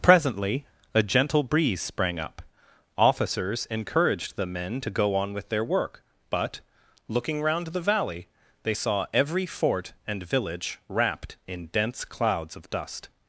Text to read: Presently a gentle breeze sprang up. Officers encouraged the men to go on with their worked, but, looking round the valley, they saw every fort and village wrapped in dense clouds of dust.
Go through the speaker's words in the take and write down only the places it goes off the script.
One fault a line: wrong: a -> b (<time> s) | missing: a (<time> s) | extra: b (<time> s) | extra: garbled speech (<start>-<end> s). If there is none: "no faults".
wrong: worked -> work (5.6 s)